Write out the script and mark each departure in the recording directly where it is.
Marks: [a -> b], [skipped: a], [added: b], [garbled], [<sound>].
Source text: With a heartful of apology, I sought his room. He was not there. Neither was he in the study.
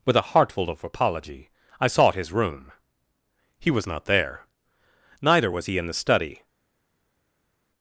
With a heartful of apology, I sought his room. He was not there. Neither was he in the study.